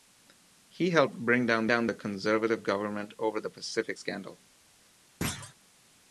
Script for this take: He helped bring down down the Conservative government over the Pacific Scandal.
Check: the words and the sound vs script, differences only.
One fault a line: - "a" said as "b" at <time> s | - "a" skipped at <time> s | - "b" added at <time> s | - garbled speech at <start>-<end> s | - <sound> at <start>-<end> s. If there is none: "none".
- thud at 5.2-5.5 s